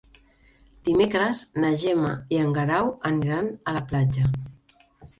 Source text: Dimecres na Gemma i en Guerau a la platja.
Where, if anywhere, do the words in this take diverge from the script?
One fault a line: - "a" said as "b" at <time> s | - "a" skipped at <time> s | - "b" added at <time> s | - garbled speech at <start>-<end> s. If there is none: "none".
- "aniran" added at 3.1 s